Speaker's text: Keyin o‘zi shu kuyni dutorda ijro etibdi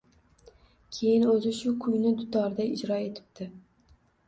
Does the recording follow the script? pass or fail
pass